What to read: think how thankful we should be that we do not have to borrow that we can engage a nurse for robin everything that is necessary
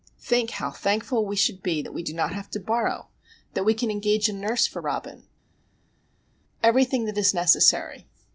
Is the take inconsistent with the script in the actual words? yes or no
no